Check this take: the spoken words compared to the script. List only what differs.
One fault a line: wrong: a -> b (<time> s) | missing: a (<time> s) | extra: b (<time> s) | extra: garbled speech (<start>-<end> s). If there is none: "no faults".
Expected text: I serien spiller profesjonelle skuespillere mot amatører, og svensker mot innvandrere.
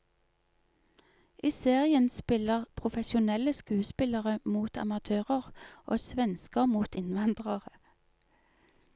no faults